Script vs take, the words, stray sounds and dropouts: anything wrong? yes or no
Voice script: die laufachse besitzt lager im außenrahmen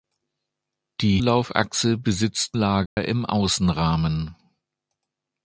yes